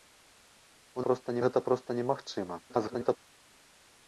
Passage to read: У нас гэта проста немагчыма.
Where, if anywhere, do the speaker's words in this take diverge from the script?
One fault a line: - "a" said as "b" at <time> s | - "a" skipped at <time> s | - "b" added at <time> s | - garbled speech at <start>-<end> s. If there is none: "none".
- "нас" said as "проста" at 1.1 s
- garbled speech at 2.7-3.2 s